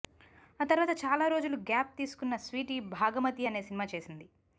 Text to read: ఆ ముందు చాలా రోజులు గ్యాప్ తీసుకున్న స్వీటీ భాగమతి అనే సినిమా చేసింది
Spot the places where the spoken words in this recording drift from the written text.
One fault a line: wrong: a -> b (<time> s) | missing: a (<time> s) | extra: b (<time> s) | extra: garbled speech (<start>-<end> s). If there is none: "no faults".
wrong: ముందు -> తర్వాత (0.7 s)